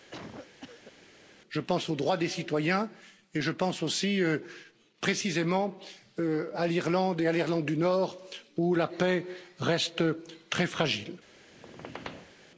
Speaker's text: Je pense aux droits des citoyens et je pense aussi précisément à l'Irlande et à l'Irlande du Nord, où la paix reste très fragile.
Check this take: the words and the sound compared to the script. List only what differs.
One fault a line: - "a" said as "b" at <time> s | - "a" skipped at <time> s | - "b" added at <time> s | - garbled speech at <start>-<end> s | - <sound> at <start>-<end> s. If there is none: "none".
- cough at 0.1-0.9 s
- squeak at 11.5-12.4 s